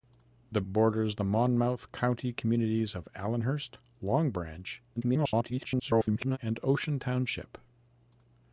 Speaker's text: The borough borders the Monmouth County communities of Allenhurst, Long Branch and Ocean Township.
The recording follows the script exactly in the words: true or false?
false